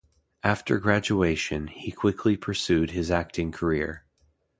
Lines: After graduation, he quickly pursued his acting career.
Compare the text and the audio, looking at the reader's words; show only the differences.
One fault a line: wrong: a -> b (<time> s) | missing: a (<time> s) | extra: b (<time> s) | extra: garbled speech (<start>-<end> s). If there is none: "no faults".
no faults